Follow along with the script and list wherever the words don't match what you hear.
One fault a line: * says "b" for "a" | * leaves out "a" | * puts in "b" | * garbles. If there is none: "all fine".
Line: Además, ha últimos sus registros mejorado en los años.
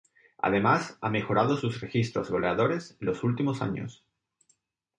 * says "mejorado" for "últimos"
* says "goleadores" for "mejorado"
* puts in "últimos"